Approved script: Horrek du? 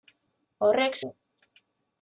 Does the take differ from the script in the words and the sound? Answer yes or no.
no